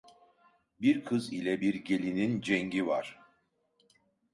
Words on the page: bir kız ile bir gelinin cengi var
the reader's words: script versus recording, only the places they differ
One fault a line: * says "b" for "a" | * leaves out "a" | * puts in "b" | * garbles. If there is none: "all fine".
all fine